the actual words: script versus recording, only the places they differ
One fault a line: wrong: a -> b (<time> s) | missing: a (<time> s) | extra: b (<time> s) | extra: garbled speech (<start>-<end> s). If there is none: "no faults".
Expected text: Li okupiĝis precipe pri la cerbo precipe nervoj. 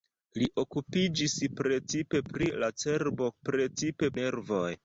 no faults